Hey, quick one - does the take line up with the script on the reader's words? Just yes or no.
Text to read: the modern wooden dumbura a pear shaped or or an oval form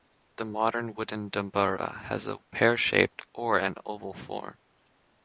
no